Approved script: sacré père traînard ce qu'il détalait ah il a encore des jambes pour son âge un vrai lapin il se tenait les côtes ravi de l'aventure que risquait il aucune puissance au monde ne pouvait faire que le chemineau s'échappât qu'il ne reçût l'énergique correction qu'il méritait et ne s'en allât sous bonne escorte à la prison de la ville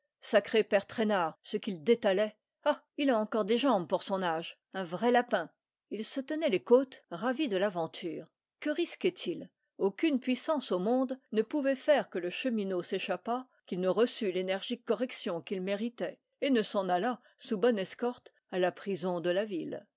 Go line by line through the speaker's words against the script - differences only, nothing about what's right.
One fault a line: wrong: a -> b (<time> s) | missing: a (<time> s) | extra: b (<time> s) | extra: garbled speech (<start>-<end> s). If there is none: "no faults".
no faults